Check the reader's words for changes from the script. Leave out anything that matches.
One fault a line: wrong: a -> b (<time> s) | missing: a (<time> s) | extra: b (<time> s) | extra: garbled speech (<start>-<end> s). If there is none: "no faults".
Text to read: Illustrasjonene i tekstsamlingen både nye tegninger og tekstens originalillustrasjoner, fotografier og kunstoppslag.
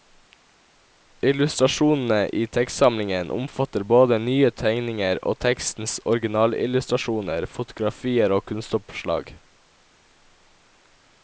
extra: omfatter (3.4 s)